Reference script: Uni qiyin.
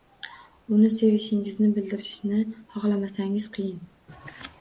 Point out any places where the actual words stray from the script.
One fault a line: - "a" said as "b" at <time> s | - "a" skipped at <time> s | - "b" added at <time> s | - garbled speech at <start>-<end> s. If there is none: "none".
- "sevishingizni bildirishni xohlamasangiz" added at 0.9 s